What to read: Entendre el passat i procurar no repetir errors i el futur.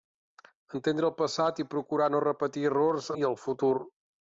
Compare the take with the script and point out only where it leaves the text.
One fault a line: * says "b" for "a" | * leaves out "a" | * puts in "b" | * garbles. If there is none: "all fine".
all fine